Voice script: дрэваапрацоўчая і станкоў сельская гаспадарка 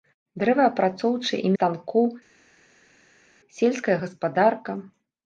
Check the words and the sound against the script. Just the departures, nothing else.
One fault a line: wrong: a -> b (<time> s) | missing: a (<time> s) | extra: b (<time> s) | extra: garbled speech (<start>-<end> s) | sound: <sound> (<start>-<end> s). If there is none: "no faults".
no faults